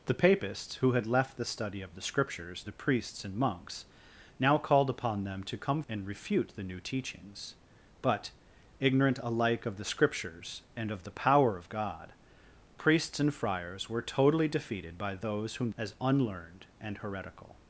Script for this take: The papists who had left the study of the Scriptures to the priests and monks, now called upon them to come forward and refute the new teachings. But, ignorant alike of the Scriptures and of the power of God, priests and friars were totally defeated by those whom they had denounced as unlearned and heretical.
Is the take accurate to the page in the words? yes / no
no